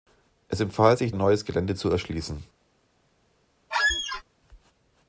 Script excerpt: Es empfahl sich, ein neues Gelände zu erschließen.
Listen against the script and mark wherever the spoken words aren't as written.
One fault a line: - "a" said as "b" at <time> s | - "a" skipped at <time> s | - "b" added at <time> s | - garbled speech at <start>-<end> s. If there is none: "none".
none